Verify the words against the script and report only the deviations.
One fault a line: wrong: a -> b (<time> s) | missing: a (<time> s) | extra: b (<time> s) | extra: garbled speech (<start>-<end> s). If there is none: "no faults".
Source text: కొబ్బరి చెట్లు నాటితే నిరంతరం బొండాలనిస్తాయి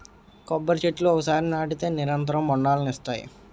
extra: ఒకసారి (1.1 s)